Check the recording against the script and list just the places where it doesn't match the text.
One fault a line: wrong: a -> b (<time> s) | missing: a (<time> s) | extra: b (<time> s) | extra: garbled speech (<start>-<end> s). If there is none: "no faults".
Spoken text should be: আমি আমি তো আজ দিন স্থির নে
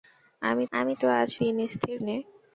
no faults